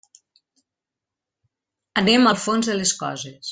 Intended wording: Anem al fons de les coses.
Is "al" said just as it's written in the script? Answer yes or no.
yes